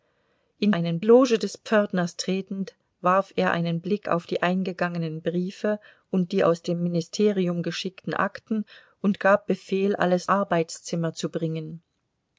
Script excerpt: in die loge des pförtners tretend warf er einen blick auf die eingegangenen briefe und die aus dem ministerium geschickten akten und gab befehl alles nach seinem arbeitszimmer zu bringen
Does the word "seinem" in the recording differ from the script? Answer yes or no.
yes